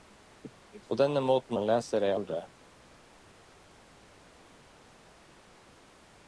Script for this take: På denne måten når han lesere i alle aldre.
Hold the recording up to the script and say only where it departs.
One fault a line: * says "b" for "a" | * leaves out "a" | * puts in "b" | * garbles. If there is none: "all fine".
* leaves out "når"
* leaves out "alle"